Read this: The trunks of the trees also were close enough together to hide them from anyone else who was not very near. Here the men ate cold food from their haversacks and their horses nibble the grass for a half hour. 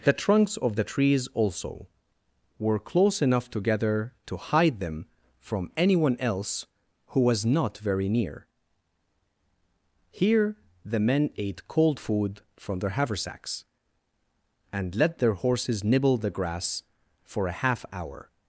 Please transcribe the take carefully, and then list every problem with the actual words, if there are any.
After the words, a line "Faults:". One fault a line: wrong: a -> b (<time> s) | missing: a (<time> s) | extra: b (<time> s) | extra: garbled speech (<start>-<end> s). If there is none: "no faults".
The trunks of the trees also were close enough together to hide them from anyone else who was not very near. Here the men ate cold food from their haversacks and let their horses nibble the grass for a half hour.
Faults:
extra: let (15.0 s)